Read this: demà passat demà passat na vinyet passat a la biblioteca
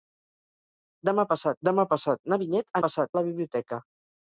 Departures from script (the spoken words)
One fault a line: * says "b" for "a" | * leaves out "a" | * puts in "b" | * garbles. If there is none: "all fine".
all fine